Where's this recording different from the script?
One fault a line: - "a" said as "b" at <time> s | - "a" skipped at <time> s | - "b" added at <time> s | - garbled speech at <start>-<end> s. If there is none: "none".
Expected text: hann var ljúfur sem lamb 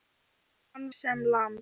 - "var ljúfur" skipped at 0.9 s